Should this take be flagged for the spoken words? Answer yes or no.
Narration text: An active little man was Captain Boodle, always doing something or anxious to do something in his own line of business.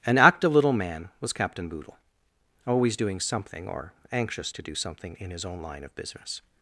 no